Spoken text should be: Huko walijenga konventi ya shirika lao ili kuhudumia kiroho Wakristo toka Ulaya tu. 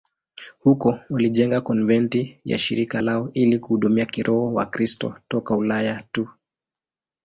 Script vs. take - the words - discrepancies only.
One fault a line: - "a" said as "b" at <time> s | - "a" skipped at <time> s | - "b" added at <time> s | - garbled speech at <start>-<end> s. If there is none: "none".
none